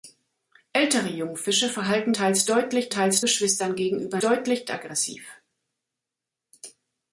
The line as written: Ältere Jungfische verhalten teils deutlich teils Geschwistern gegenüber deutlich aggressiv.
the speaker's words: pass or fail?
pass